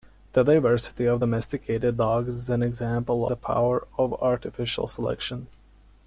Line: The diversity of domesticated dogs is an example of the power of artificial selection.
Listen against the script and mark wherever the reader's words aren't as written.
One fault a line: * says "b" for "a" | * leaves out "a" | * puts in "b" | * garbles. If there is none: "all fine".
* leaves out "of"